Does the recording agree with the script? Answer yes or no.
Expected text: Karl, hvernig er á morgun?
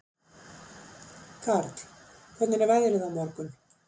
no